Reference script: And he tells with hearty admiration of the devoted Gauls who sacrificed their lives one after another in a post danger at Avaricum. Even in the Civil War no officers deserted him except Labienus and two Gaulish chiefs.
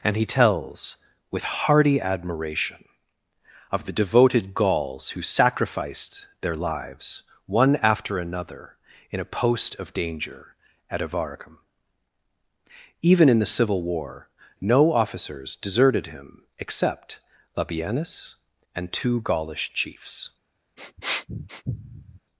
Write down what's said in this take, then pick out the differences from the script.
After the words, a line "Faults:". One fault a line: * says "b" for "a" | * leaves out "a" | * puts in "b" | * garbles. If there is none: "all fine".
And he tells with hearty admiration of the devoted Gauls who sacrificed their lives one after another in a post of danger at Avaricum. Even in the Civil War no officers deserted him except Labienus and two Gaulish chiefs.
Faults:
* puts in "of"